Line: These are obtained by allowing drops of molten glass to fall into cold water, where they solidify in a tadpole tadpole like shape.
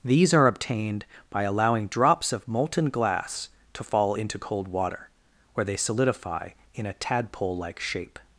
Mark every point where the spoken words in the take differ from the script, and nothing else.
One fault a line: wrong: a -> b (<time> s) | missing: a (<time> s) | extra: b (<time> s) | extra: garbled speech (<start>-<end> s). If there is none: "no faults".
missing: tadpole (7.6 s)